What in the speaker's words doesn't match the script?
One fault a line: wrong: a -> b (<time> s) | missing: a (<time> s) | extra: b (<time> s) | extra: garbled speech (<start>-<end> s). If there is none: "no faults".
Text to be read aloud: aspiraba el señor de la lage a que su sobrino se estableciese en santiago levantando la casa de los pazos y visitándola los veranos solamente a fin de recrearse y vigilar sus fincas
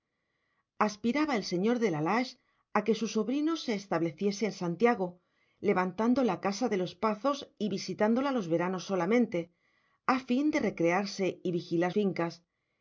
missing: sus (11.9 s)